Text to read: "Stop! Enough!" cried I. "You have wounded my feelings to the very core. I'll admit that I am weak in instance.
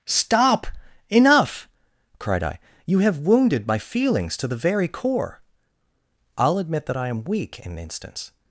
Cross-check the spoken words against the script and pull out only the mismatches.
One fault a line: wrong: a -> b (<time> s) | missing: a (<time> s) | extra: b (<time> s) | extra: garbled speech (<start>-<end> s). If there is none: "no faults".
no faults